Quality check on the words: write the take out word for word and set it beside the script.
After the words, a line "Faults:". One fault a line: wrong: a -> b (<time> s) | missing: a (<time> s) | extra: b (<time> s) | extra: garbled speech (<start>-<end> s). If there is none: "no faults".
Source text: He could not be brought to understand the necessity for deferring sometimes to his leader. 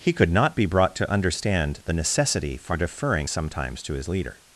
He could not be brought to understand the necessity for deferring sometimes to his leader.
Faults:
no faults